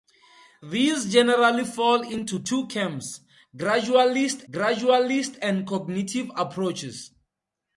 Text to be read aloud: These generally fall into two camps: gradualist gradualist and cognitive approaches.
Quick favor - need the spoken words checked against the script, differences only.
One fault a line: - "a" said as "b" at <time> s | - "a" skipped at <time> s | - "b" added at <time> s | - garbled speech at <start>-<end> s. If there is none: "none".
none